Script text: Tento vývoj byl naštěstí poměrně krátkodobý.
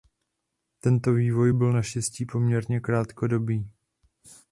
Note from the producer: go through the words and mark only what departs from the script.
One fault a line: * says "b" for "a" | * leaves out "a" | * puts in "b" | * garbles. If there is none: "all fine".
all fine